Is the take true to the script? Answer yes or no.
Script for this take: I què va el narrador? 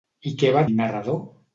yes